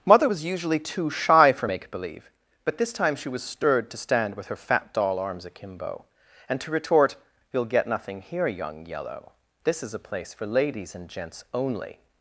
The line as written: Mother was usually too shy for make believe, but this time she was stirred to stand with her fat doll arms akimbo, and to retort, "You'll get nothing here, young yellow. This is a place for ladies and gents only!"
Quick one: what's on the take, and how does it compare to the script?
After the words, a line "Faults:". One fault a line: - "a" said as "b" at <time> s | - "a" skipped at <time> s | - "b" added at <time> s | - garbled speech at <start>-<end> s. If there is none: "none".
Mother was usually too shy for make believe, but this time she was stirred to stand with her fat doll arms akimbo, and to retort, "You'll get nothing here, young yellow. This is a place for ladies and gents only!"
Faults:
none